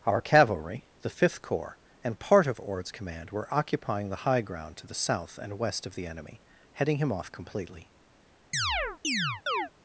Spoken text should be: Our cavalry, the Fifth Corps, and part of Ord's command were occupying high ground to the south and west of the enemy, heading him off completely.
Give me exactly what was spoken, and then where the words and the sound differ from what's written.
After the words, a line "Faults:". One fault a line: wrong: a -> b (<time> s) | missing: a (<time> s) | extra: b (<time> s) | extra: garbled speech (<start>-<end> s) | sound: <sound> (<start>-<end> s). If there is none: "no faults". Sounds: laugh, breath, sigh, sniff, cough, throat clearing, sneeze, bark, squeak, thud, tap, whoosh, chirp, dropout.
Our cavalry, the Fifth Corps, and part of Ord's command were occupying the high ground to the south and west of the enemy, heading him off completely.
Faults:
extra: the (4.1 s)
sound: chirp (8.5-9.7 s)